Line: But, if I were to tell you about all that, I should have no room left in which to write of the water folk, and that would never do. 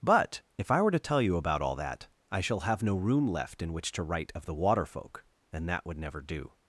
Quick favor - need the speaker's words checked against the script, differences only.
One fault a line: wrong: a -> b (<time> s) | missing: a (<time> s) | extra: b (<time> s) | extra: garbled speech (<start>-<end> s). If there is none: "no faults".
wrong: should -> shall (2.4 s)